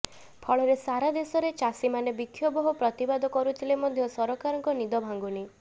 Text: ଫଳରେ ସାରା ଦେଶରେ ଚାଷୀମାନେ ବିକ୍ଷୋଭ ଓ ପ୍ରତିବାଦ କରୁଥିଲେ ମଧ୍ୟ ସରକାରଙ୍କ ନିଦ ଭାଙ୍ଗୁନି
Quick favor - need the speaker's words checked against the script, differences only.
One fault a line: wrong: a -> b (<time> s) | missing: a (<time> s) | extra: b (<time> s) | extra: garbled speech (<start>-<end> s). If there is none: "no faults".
no faults